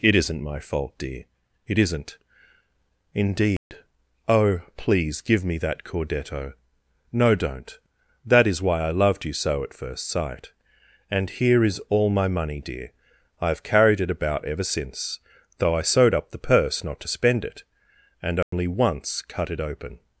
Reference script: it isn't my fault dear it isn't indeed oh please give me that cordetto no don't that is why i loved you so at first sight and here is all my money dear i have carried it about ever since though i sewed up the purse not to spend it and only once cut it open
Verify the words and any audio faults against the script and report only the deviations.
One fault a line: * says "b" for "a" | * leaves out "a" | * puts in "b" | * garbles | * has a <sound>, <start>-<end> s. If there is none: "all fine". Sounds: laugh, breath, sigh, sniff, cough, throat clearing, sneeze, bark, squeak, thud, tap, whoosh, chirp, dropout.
* has a dropout, 3.6-3.7 s
* has a dropout, 18.4-18.5 s